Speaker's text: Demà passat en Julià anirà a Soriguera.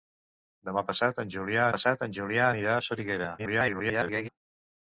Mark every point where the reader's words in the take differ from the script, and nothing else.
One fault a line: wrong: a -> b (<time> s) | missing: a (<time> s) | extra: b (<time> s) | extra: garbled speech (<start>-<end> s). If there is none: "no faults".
extra: passat en Julià (1.7 s)
extra: garbled speech (3.4-4.3 s)